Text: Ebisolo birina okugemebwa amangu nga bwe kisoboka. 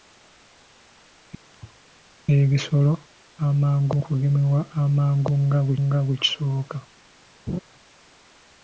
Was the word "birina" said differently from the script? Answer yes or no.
yes